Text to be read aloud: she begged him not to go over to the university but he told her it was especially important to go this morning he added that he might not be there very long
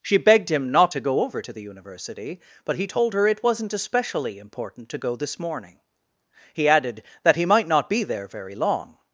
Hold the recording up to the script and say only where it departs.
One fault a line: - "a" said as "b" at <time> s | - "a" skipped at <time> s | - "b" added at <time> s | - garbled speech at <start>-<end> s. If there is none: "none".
- "was" said as "wasn't" at 3.4 s